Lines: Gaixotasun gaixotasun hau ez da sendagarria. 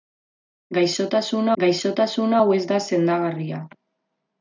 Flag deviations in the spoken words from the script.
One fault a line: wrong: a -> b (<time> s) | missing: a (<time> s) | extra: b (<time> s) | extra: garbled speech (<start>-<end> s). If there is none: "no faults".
no faults